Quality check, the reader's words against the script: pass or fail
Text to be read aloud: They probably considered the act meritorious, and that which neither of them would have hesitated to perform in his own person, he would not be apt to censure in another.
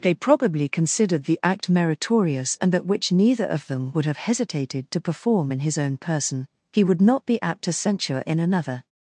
pass